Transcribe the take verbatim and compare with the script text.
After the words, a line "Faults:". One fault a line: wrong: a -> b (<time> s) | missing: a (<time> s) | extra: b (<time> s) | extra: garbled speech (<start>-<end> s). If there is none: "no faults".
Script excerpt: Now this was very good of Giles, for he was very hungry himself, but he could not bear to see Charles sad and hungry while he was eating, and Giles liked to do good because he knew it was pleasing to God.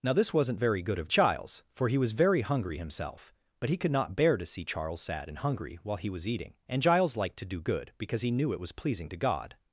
Now this wasn't very good of Giles, for he was very hungry himself, but he could not bear to see Charles sad and hungry while he was eating, and Giles liked to do good because he knew it was pleasing to God.
Faults:
wrong: was -> wasn't (0.3 s)